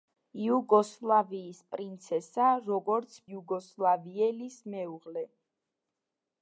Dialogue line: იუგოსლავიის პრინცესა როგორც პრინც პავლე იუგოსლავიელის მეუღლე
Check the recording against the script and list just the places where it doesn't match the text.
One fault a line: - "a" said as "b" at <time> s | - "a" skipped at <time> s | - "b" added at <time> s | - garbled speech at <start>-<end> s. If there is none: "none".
- "პრინც პავლე" skipped at 3.2 s